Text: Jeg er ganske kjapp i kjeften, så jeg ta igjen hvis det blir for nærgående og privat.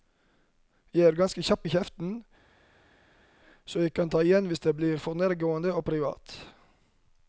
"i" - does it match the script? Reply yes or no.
yes